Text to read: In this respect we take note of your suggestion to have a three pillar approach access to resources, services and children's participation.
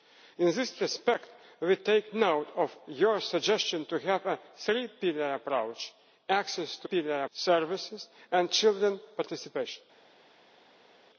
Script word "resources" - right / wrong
wrong